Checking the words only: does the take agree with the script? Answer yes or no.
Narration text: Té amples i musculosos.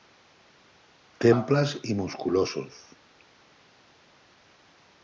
yes